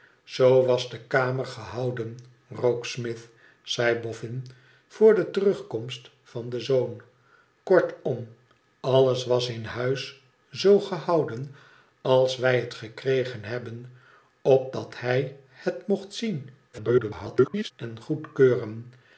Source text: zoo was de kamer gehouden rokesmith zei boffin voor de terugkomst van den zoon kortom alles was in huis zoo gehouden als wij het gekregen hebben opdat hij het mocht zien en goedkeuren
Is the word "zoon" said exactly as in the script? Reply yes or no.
yes